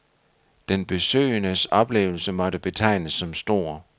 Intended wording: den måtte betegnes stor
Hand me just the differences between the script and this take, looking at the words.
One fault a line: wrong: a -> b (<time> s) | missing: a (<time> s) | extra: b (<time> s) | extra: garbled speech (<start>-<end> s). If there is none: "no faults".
extra: besøgendes oplevelse (0.8 s)
extra: som (3.1 s)